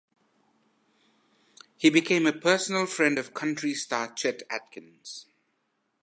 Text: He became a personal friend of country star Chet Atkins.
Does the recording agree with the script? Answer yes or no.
yes